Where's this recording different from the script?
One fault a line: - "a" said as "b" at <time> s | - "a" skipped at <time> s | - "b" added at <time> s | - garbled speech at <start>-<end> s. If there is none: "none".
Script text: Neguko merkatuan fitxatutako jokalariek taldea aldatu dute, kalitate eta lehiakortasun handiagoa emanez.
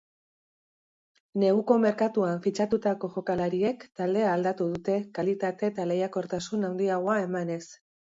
none